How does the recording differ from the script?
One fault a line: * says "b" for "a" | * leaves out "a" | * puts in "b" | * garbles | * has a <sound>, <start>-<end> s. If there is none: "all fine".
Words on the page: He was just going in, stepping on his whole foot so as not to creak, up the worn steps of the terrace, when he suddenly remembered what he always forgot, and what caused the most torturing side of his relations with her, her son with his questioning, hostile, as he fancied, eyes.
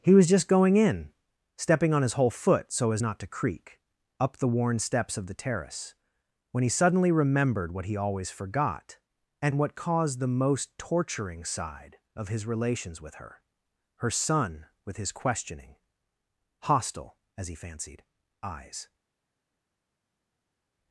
all fine